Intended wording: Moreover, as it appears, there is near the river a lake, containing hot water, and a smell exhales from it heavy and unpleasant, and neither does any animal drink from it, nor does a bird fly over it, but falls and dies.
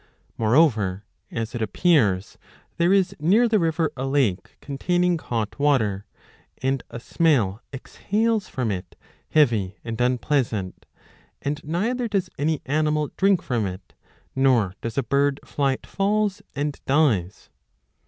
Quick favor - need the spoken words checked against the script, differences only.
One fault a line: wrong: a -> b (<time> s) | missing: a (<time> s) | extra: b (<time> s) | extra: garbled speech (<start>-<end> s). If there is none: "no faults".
missing: over it but (15.8 s)